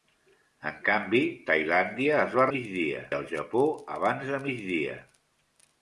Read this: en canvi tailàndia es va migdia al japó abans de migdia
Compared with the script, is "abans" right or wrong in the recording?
right